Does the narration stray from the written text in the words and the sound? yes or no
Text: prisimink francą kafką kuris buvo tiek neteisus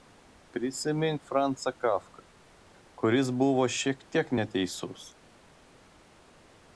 yes